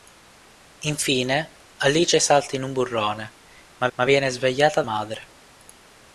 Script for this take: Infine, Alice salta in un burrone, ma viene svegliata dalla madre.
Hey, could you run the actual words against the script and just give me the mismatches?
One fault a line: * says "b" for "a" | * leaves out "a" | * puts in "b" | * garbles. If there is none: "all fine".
* puts in "ma"
* leaves out "dalla"